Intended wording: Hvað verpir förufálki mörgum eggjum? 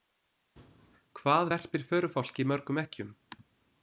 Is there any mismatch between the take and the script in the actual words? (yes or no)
no